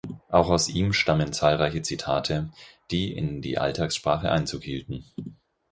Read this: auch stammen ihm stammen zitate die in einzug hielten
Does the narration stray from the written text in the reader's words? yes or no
yes